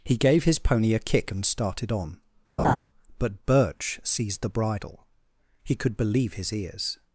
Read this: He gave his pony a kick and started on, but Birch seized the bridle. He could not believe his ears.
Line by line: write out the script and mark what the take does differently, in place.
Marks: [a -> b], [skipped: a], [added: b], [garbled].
He gave his pony a kick and started on, but Birch seized the bridle. He could [skipped: not] believe his ears.